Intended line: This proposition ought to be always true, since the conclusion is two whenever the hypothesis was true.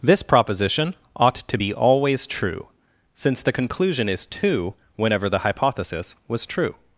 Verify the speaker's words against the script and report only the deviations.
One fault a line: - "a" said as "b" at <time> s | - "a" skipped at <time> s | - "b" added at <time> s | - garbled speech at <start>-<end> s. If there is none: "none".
none